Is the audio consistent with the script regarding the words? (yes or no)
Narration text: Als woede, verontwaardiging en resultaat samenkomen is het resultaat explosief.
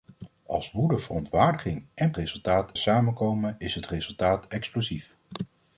yes